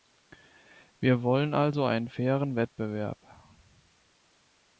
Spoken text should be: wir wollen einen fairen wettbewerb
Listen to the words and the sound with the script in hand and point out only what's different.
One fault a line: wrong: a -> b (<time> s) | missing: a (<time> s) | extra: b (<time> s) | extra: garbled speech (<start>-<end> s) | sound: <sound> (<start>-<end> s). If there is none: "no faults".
extra: also (1.5 s)